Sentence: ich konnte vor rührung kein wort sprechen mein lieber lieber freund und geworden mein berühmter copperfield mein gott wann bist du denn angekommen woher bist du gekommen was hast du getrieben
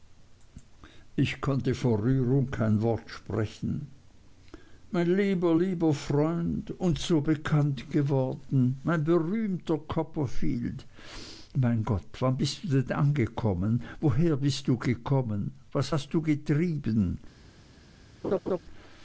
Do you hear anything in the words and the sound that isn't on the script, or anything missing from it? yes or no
yes